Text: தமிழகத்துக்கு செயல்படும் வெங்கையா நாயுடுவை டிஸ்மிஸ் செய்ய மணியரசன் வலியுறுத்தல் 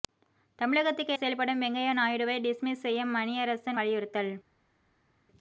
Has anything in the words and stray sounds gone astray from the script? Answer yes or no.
no